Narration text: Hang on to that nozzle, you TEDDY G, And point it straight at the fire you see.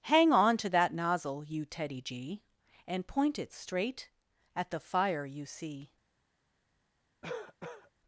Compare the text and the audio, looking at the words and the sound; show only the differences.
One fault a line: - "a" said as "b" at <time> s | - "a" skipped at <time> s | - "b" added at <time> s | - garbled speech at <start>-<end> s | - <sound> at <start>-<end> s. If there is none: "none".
- cough at 7.2-7.9 s